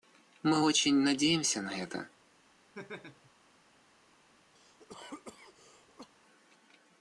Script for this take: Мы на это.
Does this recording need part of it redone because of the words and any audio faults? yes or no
yes